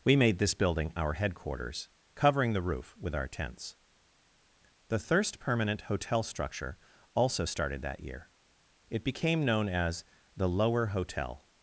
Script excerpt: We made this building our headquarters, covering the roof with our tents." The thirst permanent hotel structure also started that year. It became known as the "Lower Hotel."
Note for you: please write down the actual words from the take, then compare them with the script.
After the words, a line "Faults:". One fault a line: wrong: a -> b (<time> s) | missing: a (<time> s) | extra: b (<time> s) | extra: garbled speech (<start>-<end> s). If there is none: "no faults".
We made this building our headquarters, covering the roof with our tents." The thirst permanent hotel structure also started that year. It became known as the "Lower Hotel."
Faults:
no faults